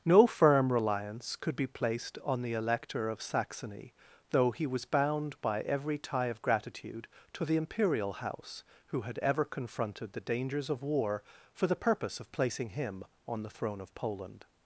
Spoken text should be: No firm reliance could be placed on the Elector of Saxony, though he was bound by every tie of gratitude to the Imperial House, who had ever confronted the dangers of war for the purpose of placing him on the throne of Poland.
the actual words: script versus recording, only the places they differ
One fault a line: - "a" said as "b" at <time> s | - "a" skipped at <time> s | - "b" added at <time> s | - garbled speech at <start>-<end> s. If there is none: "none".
none